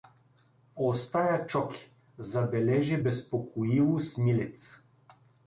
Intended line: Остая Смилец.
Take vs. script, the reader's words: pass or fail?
fail